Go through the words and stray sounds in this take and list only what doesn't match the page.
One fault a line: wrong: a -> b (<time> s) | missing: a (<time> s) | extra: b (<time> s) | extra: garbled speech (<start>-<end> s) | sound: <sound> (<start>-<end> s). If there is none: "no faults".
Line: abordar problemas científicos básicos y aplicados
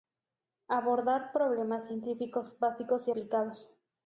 no faults